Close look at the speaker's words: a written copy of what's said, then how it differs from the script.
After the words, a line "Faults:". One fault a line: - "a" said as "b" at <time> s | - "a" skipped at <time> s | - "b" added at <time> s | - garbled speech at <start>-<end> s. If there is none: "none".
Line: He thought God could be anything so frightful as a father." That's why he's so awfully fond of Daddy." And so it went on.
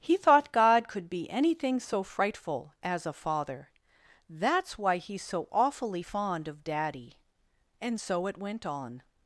He thought God could be anything so frightful as a father." That's why he's so awfully fond of Daddy." And so it went on.
Faults:
none